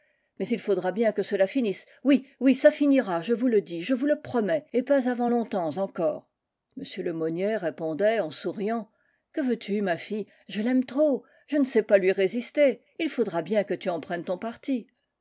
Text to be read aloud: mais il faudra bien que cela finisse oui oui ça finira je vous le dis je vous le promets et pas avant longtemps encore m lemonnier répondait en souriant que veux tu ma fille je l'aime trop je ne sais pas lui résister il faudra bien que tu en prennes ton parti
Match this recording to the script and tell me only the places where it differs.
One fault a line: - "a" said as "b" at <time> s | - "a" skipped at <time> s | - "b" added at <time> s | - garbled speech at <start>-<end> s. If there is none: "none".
none